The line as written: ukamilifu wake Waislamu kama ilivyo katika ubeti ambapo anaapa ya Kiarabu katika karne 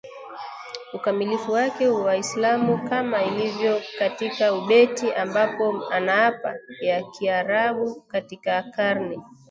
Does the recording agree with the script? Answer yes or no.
yes